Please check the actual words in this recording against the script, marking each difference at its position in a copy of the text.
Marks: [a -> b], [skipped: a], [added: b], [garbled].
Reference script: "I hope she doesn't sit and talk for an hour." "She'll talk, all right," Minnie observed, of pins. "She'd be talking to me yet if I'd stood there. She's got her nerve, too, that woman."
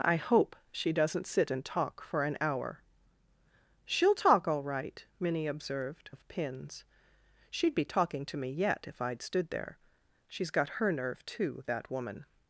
"I hope she doesn't sit and talk for an hour." "She'll talk, all right," Minnie observed, of pins. "She'd be talking to me yet if I'd stood there. She's got her nerve, too, that woman."